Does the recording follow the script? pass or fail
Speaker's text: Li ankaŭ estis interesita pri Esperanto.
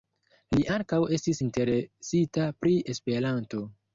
pass